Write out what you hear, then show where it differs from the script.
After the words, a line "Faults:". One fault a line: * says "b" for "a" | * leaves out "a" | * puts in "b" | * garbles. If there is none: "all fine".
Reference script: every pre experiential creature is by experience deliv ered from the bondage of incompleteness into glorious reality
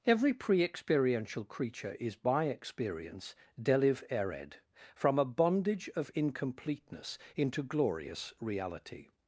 every pre experiential creature is by experience deliv ered from a bondage of incompleteness into glorious reality
Faults:
* says "a" for "the"